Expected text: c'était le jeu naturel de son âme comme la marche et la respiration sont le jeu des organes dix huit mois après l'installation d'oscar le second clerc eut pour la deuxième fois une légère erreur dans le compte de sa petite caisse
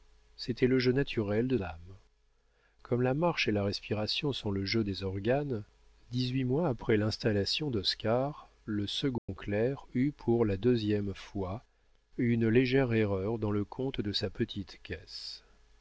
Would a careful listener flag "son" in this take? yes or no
yes